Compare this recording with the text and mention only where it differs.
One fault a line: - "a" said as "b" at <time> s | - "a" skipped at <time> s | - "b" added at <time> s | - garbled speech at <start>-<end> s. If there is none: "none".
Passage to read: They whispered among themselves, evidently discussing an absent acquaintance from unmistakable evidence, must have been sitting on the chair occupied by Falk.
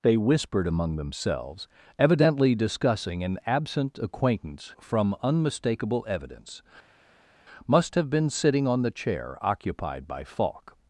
none